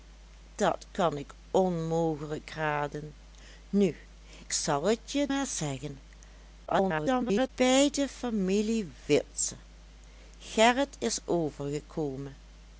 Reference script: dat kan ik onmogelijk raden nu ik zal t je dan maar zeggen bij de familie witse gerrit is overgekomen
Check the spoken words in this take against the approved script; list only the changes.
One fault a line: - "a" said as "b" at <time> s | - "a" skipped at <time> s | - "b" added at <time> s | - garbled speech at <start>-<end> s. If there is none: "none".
- "ik" skipped at 4.0 s
- "dan" skipped at 5.3 s
- garbled speech at 6.7-7.5 s